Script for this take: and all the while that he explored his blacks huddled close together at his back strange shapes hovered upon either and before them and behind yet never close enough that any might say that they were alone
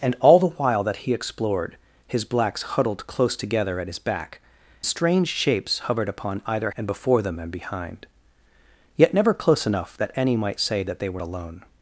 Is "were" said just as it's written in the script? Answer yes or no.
yes